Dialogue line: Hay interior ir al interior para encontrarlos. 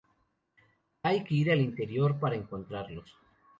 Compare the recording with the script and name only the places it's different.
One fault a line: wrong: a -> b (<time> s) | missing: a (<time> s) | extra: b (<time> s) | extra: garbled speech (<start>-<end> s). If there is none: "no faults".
wrong: interior -> que (1.2 s)